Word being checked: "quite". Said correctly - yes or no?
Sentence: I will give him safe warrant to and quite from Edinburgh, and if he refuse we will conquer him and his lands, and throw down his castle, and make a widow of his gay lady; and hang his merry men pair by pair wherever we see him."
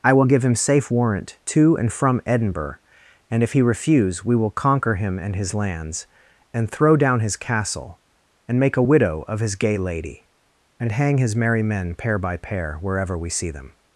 no